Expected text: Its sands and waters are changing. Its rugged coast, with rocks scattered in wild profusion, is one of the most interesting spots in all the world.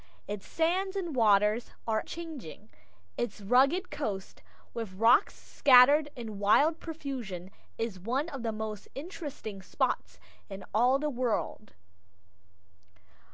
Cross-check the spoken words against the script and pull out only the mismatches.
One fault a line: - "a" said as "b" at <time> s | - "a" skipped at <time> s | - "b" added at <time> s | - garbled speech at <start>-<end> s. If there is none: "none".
none